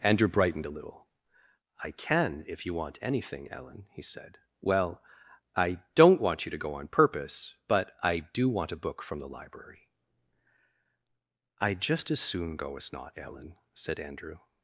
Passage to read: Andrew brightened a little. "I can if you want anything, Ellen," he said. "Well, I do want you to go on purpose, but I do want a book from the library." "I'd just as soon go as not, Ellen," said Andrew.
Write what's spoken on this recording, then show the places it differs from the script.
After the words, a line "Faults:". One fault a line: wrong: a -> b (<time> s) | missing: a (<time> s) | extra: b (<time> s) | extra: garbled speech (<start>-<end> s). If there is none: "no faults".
Andrew brightened a little. "I can if you want anything, Ellen," he said. "Well, I don't want you to go on purpose, but I do want a book from the library." "I'd just as soon go as not, Ellen," said Andrew.
Faults:
wrong: do -> don't (5.9 s)